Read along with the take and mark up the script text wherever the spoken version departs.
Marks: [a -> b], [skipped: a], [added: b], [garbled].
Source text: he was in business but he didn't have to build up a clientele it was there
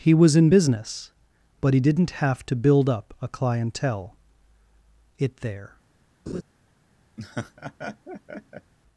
he was in business but he didn't have to build up a clientele it [skipped: was] there